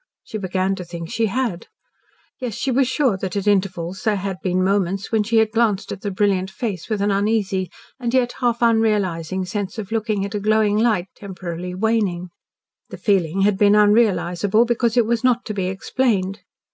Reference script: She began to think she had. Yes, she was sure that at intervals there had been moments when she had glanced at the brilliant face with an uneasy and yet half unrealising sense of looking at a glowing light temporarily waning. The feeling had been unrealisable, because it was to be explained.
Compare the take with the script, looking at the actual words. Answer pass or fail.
fail